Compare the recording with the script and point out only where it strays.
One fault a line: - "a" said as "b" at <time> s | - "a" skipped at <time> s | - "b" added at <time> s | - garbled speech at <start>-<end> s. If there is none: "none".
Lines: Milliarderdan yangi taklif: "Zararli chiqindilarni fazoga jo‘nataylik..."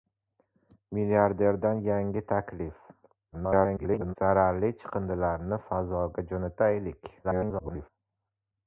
- garbled speech at 3.3-4.2 s
- garbled speech at 7.2-7.9 s